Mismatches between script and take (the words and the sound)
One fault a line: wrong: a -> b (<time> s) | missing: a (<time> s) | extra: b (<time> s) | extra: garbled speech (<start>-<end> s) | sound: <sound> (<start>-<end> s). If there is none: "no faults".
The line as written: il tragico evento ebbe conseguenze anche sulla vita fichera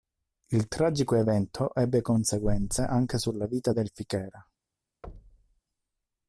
extra: del (3.7 s)
sound: thud (5.0-5.6 s)